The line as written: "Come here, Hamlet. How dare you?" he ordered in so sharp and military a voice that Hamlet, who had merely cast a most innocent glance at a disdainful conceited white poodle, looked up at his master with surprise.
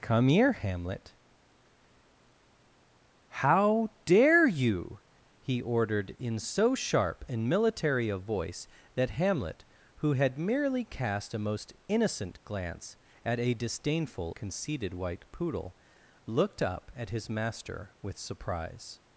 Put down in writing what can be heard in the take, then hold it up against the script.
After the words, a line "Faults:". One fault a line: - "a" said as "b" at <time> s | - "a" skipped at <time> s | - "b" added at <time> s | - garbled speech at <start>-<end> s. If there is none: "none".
"Come here, Hamlet. How dare you?" he ordered in so sharp and military a voice that Hamlet, who had merely cast a most innocent glance at a disdainful conceited white poodle, looked up at his master with surprise.
Faults:
none